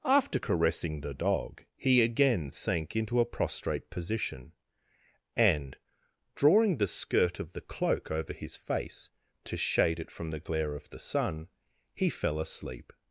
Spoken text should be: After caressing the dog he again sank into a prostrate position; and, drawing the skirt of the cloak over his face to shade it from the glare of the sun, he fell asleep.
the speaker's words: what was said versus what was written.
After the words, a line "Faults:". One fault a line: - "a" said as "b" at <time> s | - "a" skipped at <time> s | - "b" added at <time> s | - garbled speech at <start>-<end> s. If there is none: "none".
After caressing the dog he again sank into a prostrate position; and, drawing the skirt of the cloak over his face to shade it from the glare of the sun, he fell asleep.
Faults:
none